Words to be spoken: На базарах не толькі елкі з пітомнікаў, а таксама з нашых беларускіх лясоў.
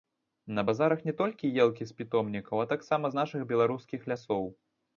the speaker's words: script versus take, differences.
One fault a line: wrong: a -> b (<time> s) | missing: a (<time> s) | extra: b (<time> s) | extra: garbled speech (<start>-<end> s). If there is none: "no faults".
no faults